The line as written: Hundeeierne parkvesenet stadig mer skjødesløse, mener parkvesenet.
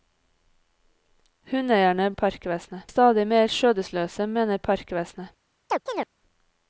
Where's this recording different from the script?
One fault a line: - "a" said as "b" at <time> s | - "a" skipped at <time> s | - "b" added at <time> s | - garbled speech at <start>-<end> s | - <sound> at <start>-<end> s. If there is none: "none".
- chirp at 5.7-6.1 s